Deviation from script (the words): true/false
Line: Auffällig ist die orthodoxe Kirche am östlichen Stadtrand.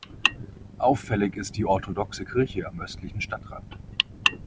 false